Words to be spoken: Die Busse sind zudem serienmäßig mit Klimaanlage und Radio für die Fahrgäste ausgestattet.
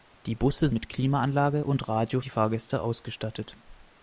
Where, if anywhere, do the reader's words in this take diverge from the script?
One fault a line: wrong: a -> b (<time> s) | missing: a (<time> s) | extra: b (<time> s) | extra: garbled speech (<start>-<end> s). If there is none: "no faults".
missing: sind zudem serienmäßig (0.7 s)
missing: für (2.2 s)